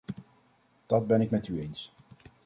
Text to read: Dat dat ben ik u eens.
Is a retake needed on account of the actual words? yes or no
yes